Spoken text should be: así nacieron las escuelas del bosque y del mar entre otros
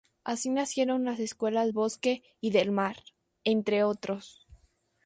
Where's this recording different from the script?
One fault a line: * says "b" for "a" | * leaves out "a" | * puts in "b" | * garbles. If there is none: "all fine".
* leaves out "del"